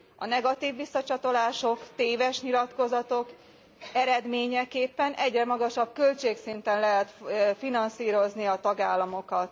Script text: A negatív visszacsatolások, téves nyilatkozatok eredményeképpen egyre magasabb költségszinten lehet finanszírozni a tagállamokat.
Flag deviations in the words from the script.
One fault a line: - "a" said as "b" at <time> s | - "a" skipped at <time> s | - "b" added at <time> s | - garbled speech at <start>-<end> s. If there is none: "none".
none